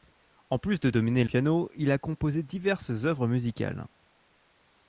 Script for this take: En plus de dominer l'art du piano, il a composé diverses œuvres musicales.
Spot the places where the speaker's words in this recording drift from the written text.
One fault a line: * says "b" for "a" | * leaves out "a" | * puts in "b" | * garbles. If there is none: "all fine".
* leaves out "l'art du"